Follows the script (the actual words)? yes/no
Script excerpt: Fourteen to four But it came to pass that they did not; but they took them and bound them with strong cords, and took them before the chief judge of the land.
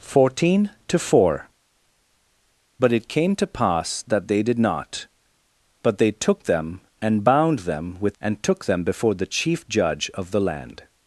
no